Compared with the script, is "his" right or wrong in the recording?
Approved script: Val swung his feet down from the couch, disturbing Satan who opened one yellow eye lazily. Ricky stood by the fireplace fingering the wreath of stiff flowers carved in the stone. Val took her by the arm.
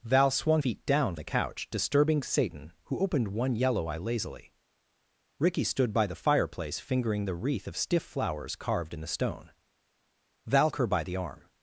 wrong